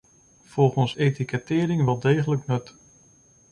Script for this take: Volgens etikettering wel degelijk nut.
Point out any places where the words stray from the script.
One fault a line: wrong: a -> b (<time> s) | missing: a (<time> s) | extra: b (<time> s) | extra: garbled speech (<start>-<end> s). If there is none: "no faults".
no faults